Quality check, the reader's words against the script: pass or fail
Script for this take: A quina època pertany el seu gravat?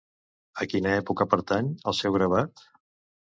pass